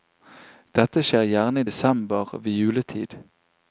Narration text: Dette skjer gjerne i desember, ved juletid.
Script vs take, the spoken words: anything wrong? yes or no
no